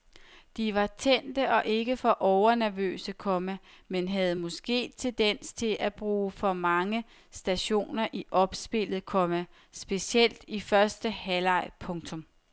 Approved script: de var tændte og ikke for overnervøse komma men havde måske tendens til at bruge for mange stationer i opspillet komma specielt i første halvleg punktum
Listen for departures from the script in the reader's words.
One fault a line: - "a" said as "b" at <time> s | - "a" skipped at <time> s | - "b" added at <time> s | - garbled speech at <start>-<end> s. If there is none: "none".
none